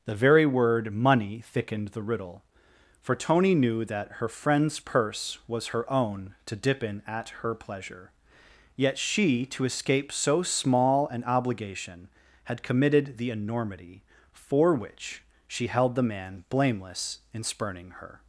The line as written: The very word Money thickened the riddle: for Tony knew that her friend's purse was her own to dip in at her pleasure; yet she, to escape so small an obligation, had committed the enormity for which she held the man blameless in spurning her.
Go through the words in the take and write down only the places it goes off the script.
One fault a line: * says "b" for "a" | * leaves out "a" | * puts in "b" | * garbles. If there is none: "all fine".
all fine